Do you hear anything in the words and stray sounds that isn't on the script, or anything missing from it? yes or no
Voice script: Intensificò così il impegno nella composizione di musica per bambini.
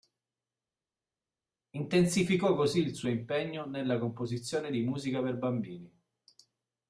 yes